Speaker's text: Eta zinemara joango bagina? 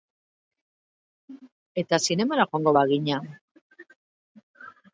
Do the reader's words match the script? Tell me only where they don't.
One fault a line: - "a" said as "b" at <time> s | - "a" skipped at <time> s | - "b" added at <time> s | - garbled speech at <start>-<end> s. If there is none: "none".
none